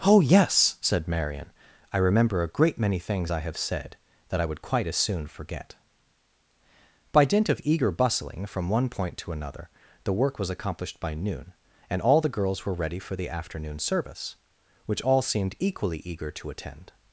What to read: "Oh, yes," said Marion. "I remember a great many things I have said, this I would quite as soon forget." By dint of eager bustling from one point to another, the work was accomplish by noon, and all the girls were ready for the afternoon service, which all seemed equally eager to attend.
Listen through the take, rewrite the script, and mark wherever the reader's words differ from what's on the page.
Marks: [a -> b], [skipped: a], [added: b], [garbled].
"Oh, yes," said Marion. "I remember a great many things I have said, [this -> that] I would quite as soon forget." By dint of eager bustling from one point to another, the work was [accomplish -> accomplished] by noon, and all the girls were ready for the afternoon service, which all seemed equally eager to attend.